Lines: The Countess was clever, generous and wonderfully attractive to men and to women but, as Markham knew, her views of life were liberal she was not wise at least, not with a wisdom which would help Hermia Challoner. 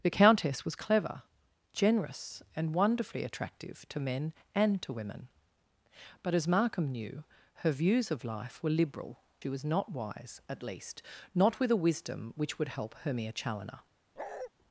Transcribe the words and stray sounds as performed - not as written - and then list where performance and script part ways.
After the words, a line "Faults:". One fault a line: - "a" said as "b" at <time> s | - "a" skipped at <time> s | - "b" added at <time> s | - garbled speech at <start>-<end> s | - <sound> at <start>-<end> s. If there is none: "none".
The Countess was clever, generous and wonderfully attractive to men and to women but, as Markham knew, her views of life were liberal she was not wise at least, not with a wisdom which would help Hermia Challoner.
Faults:
- bark at 14.2-14.5 s